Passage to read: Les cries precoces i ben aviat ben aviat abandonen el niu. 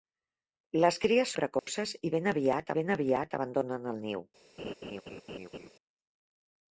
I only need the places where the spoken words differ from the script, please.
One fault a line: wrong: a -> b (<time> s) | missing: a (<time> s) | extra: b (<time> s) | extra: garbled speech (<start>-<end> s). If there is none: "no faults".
no faults